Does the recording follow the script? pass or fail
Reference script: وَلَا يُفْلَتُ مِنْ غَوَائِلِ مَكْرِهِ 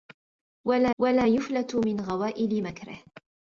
fail